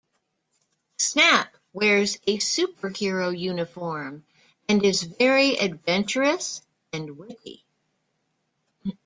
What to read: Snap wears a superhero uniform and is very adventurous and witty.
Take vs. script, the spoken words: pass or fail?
pass